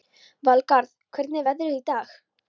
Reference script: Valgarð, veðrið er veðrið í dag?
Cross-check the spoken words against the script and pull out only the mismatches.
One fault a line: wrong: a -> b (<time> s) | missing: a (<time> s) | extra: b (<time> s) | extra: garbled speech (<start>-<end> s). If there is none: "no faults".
wrong: veðrið -> hvernig (1.2 s)